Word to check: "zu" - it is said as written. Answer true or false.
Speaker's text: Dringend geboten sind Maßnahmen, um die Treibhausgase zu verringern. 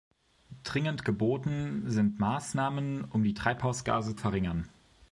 false